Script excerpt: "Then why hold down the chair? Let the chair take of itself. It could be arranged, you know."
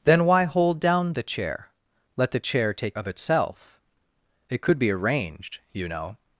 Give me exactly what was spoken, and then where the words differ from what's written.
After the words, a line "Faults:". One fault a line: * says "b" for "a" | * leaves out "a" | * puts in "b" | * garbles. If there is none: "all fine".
"Then why hold down the chair? Let the chair take of itself. It could be arranged, you know."
Faults:
all fine